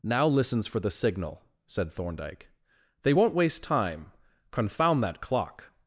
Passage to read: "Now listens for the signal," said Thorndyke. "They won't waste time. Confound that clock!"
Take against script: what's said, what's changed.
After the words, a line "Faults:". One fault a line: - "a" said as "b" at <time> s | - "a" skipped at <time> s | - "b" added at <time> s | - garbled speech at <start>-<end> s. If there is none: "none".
"Now listens for the signal," said Thorndyke. "They won't waste time. Confound that clock!"
Faults:
none